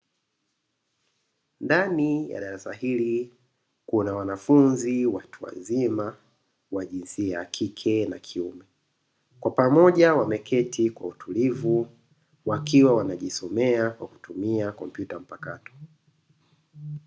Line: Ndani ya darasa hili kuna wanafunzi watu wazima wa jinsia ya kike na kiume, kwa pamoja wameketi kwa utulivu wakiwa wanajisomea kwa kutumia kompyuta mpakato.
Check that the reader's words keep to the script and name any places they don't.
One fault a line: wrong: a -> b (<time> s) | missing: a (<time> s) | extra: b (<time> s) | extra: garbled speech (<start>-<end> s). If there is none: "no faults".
no faults